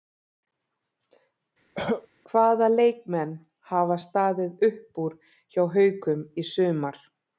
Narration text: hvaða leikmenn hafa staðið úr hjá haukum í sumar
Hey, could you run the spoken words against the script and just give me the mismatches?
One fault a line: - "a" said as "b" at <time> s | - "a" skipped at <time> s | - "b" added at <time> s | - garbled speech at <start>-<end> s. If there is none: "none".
- "upp" added at 4.7 s